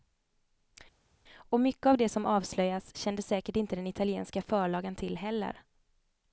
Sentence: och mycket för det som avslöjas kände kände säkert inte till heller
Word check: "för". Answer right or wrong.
wrong